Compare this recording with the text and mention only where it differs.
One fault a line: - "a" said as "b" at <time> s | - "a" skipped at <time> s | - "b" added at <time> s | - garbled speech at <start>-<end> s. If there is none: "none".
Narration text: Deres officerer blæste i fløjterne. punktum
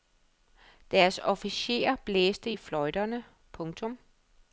none